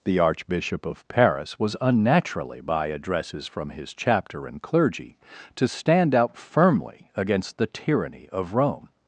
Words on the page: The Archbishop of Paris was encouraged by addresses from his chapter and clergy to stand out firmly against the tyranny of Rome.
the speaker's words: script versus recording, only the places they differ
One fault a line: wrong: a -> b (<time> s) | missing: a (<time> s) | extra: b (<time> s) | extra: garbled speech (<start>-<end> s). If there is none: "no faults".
wrong: encouraged -> unnaturally (1.8 s)